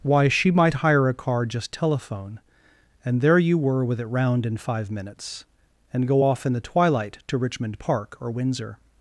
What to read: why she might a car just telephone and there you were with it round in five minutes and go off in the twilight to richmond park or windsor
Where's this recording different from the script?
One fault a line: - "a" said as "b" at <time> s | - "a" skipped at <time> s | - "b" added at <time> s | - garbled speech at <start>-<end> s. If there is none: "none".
- "hire" added at 0.8 s